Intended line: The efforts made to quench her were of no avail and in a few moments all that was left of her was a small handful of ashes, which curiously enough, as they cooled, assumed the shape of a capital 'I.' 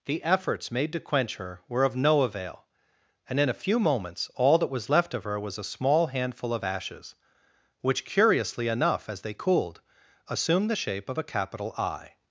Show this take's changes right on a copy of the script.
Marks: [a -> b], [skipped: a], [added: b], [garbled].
The efforts made to quench her were of no avail and in a few moments all that was left of her was a small handful of ashes, which curiously enough, as they cooled, assumed the shape of a capital 'I.'